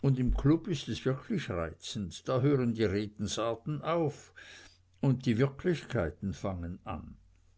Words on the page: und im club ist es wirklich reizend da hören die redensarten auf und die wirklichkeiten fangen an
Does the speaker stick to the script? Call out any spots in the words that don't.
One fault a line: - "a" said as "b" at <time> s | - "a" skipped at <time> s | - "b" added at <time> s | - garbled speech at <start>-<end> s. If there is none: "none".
none